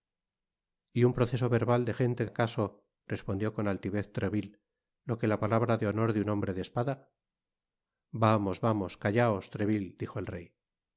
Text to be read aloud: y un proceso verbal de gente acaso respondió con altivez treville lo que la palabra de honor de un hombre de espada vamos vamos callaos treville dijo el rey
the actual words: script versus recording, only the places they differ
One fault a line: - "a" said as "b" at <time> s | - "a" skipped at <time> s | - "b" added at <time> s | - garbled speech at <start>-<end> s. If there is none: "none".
none